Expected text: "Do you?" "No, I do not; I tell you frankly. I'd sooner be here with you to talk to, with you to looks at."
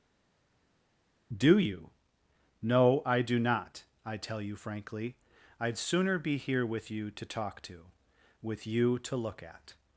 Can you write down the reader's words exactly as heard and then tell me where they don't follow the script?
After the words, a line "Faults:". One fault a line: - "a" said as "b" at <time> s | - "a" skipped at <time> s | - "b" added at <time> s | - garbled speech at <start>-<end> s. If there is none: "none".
"Do you?" "No, I do not; I tell you frankly. I'd sooner be here with you to talk to, with you to look at."
Faults:
- "looks" said as "look" at 9.2 s